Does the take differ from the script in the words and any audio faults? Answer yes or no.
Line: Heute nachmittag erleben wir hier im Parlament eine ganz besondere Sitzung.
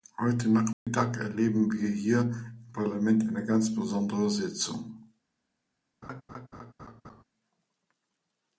yes